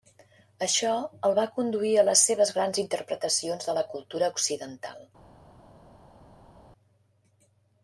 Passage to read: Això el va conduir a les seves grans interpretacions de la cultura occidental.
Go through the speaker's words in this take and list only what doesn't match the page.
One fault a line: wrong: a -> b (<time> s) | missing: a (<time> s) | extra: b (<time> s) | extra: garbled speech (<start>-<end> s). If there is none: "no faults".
no faults